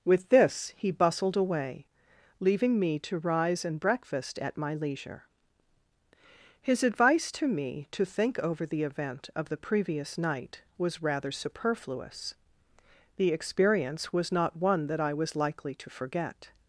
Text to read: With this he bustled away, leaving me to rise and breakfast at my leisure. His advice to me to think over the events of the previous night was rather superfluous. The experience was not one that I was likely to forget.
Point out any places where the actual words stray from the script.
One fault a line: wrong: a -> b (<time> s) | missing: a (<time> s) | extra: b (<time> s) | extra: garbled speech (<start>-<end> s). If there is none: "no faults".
wrong: events -> event (8.8 s)